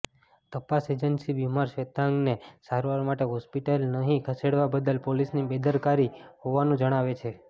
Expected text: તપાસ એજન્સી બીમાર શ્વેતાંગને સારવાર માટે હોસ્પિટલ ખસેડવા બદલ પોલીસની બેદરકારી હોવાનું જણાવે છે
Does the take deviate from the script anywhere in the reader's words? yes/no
yes